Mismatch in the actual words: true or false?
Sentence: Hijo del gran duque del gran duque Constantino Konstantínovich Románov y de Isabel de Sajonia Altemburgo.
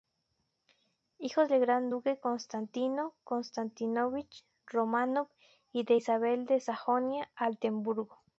true